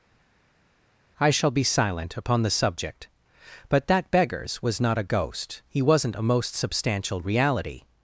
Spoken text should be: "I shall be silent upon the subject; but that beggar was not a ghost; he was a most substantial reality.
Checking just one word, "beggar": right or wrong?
wrong